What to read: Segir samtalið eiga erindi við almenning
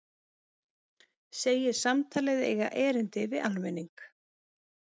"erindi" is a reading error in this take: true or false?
false